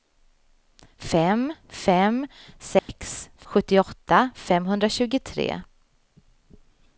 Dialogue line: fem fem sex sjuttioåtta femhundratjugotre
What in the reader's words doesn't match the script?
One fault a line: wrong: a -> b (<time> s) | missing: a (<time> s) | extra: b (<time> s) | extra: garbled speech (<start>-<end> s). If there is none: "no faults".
no faults